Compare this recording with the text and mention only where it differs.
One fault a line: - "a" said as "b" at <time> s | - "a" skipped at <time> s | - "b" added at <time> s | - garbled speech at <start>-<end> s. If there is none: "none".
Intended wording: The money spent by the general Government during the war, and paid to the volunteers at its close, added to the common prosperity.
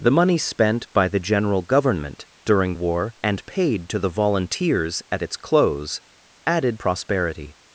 - "the" skipped at 2.7 s
- "to the common" skipped at 6.8 s